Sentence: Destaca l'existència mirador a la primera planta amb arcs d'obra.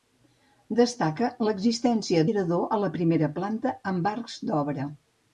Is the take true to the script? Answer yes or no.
yes